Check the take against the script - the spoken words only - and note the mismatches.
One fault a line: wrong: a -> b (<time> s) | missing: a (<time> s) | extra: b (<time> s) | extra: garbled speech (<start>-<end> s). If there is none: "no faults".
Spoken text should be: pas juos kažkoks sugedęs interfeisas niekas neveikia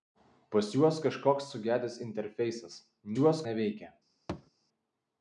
wrong: niekas -> juos (3.2 s)